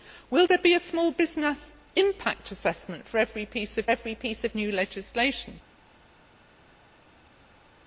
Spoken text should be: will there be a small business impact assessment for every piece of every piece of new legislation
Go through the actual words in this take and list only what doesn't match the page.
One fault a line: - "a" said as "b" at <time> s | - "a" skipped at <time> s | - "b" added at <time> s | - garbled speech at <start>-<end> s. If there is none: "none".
none